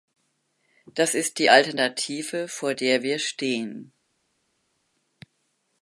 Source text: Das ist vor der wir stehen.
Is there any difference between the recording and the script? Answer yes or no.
yes